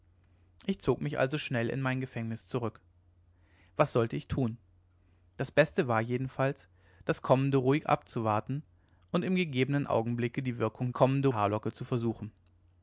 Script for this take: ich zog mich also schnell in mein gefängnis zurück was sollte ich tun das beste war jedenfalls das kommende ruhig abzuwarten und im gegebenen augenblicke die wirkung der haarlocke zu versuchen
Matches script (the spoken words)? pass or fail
fail